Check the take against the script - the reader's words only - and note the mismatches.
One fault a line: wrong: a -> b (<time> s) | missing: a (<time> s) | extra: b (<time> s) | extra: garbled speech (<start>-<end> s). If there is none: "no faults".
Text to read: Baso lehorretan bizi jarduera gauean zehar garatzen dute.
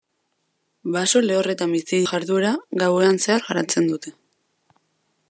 no faults